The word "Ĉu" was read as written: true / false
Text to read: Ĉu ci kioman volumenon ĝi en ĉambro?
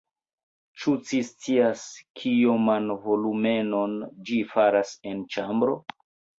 true